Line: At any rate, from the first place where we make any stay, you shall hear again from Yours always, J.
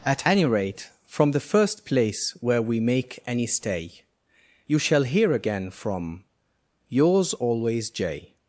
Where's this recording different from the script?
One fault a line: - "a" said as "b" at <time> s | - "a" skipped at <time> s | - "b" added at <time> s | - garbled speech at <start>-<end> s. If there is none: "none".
none